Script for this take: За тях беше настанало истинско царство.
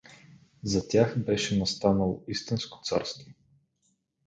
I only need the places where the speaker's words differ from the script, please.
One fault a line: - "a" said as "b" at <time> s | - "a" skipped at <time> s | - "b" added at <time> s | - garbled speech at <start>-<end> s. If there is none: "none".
none